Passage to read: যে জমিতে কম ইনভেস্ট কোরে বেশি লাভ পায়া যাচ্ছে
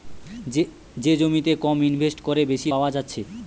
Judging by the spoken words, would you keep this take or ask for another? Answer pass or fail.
fail